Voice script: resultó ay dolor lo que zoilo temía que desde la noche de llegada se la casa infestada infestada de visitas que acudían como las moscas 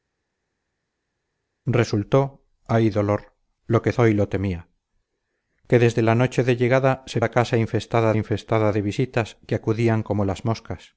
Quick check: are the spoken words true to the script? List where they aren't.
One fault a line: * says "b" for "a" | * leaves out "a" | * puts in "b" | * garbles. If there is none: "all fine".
all fine